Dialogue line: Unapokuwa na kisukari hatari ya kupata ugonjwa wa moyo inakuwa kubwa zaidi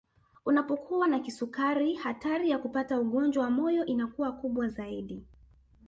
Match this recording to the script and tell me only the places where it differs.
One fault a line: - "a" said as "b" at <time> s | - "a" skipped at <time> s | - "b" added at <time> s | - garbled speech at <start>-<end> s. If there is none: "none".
none